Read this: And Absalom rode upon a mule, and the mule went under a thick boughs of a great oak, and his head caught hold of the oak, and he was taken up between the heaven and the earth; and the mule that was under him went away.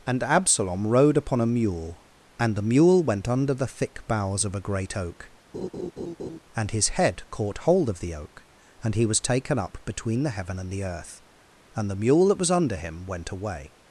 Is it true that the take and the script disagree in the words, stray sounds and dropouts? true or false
true